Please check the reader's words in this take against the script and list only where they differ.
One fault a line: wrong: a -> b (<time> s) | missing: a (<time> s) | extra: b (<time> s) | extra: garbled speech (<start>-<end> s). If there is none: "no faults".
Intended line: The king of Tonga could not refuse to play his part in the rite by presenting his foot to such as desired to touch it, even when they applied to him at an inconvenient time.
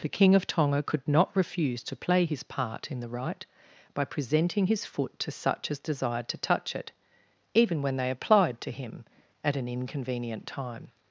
no faults